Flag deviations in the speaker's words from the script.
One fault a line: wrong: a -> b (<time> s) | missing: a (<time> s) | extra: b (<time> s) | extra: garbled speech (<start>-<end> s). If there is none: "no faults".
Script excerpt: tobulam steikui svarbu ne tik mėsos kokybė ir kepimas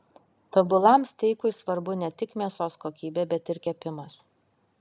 extra: bet (3.4 s)